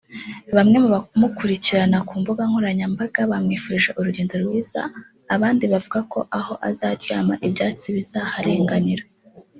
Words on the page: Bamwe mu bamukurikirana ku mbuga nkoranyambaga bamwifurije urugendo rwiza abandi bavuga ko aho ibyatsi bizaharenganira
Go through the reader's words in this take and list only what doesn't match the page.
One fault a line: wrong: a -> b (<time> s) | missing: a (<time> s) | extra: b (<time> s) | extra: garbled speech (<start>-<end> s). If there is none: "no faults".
extra: azaryama (6.7 s)